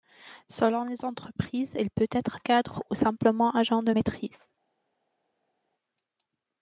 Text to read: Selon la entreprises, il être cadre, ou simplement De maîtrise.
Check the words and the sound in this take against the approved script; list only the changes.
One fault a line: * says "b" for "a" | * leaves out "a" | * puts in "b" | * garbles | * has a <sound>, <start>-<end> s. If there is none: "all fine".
* says "les" for "la"
* puts in "peut"
* puts in "Agent"